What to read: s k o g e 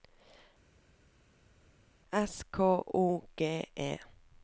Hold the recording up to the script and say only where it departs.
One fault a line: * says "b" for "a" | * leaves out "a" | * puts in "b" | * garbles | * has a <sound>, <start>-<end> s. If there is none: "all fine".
all fine